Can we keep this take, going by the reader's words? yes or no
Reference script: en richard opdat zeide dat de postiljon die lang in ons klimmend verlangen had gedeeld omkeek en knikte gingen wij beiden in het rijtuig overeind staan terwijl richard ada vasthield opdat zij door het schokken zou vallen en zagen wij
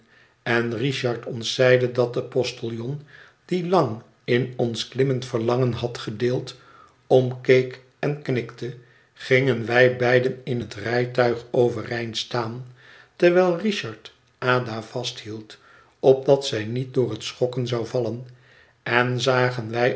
no